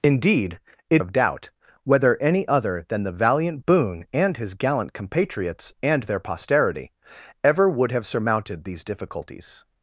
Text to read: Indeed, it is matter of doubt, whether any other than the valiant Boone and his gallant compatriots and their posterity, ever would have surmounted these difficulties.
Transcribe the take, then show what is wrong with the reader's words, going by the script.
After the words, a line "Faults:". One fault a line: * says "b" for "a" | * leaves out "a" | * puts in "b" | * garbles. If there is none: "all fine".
Indeed, it of doubt, whether any other than the valiant Boone and his gallant compatriots and their posterity, ever would have surmounted these difficulties.
Faults:
* leaves out "is matter"